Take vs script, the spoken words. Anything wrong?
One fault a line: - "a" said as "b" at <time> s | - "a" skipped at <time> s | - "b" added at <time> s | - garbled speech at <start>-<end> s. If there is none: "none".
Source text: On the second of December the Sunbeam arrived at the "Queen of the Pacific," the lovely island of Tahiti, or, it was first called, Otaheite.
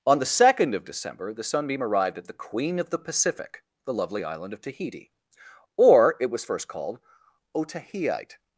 none